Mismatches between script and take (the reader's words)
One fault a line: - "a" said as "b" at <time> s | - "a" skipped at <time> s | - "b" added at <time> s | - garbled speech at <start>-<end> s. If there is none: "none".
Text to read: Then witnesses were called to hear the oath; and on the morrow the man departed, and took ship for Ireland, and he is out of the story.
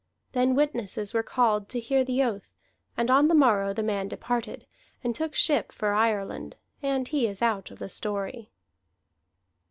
none